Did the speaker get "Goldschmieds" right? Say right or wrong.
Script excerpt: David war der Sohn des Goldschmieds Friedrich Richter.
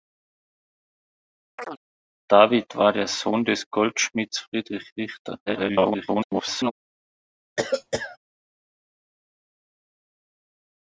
right